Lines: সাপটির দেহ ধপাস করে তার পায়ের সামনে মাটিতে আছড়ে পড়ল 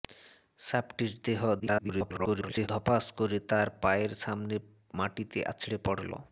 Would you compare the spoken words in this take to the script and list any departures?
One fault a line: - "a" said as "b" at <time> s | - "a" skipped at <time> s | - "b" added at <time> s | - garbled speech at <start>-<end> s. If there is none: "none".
- garbled speech at 1.6-2.7 s